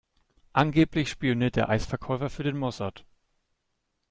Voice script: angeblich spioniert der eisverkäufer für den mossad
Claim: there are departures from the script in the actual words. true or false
false